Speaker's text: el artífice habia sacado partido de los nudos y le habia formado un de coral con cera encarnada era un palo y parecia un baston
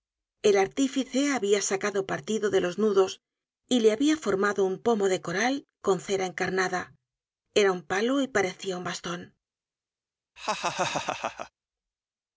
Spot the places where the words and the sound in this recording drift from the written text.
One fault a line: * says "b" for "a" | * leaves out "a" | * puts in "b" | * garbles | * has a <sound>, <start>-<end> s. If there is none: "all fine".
* puts in "pomo"
* has a laugh, 10.4-11.5 s